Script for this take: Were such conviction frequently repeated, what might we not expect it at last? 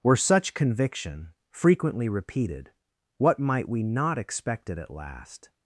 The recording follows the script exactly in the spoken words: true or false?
true